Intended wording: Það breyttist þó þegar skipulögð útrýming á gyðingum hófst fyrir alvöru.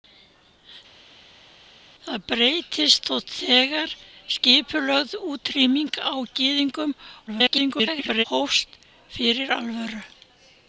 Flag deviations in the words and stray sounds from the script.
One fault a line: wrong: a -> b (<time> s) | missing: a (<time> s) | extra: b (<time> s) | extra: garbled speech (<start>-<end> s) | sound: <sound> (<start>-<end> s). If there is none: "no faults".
extra: garbled speech (7.3-8.2 s)